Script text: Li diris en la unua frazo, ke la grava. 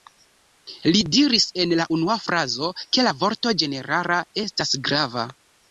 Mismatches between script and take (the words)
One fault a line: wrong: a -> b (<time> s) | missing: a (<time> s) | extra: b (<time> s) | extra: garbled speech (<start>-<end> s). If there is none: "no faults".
extra: vorto ĝenerala estas (3.3 s)